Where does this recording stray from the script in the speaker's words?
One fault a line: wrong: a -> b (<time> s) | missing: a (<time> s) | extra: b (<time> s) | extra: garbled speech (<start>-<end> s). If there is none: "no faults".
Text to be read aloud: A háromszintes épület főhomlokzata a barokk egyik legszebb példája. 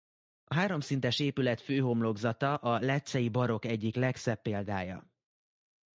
extra: leccei (2.8 s)